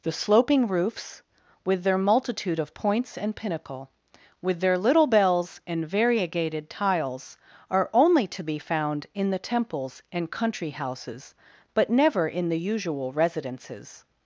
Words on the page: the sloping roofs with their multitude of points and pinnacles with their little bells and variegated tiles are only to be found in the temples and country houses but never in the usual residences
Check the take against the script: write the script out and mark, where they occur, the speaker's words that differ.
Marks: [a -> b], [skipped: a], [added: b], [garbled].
the sloping roofs with their multitude of points and [pinnacles -> pinnacle] with their little bells and variegated tiles are only to be found in the temples and country houses but never in the usual residences